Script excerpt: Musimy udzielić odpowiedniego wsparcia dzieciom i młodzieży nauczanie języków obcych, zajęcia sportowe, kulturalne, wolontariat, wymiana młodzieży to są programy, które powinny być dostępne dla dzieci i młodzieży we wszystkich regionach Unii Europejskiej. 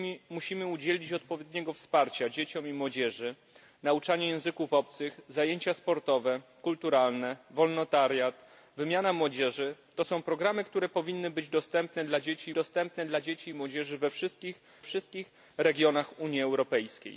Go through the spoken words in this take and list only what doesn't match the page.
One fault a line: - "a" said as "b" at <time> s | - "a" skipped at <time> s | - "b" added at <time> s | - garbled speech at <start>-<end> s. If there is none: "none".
- "dostępne dla dzieci" added at 12.5 s
- "wszystkich" added at 14.8 s